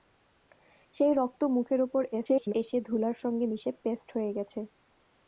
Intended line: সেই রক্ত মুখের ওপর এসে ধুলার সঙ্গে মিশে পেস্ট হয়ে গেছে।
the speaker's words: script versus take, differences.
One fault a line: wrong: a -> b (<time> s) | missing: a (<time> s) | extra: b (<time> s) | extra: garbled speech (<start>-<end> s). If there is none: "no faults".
extra: garbled speech (2.1-2.5 s)